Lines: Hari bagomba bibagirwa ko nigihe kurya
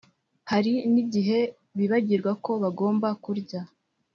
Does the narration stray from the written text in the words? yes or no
yes